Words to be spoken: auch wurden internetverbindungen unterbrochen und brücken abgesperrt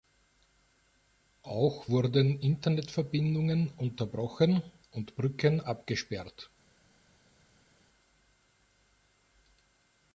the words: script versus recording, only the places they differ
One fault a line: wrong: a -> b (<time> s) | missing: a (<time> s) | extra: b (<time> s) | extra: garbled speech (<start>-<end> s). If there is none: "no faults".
no faults